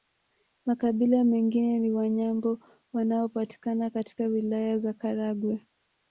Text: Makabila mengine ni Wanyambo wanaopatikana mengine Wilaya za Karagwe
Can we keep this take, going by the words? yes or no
no